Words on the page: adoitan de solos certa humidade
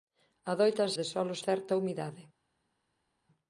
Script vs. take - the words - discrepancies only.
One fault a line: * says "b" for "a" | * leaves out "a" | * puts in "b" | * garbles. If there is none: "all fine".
all fine